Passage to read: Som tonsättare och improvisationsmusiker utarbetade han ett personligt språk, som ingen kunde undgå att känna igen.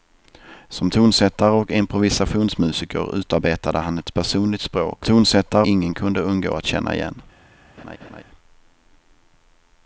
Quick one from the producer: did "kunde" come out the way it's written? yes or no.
yes